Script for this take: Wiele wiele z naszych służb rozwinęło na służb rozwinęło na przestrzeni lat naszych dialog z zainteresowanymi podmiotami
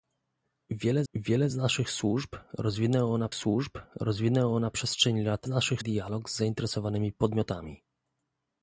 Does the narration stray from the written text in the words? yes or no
no